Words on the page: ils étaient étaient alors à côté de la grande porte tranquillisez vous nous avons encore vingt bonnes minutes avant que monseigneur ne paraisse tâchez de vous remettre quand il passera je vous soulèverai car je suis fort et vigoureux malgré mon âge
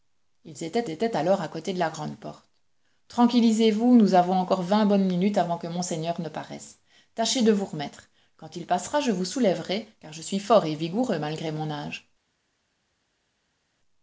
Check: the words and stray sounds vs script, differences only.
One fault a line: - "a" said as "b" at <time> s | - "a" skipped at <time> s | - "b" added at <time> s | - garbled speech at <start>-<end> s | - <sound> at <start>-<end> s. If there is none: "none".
none